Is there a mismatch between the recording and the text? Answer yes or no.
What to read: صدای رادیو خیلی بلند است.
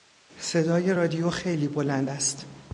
no